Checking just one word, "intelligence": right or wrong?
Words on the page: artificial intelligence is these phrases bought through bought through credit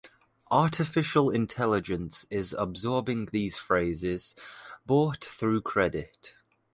right